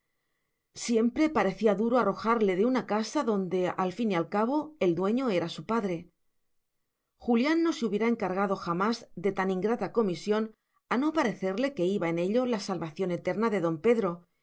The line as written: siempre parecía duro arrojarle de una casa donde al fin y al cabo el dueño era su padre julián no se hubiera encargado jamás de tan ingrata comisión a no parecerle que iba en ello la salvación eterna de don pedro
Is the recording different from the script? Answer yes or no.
no